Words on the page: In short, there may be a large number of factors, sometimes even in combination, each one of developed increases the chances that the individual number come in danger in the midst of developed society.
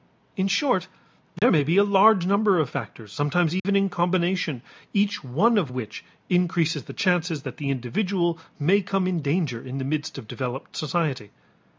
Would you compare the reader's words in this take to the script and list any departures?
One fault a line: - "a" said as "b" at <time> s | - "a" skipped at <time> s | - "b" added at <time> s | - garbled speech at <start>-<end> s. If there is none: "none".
- "developed" said as "which" at 5.7 s
- "number" said as "may" at 8.6 s